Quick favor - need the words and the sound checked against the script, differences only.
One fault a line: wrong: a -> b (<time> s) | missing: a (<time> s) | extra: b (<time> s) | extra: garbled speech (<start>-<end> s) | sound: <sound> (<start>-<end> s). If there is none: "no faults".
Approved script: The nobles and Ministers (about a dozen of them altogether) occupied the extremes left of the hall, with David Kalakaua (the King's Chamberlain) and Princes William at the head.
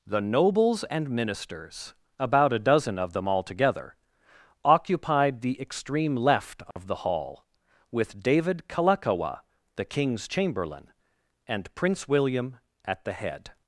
wrong: extremes -> extreme (5.6 s)
sound: dropout (6.7-6.8 s)
wrong: Princes -> Prince (11.7 s)